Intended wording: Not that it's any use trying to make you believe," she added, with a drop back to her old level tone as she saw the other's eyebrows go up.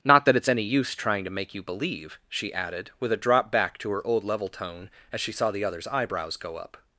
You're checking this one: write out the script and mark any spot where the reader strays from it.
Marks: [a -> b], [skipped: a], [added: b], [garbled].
Not that it's any use trying to make you believe," she added, with a drop back to her old level tone as she saw the other's eyebrows go up.